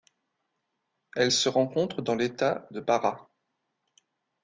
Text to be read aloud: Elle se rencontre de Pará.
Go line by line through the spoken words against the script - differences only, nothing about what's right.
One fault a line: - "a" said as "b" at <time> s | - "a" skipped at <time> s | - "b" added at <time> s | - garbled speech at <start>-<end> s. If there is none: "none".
- "dans l'État" added at 2.0 s